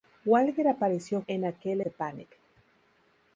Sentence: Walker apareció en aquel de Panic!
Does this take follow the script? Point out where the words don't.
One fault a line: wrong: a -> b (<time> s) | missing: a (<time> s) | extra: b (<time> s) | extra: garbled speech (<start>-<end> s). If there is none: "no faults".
no faults